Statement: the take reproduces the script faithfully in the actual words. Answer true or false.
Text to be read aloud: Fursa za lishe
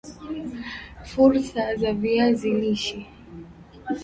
false